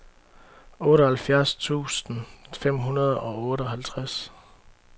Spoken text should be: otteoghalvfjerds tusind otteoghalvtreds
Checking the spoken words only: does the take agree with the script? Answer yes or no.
no